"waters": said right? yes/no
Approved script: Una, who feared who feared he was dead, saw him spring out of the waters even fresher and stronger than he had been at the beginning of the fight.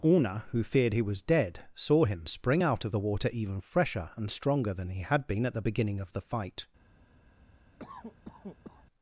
no